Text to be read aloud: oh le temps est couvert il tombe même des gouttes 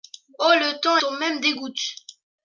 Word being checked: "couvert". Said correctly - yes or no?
no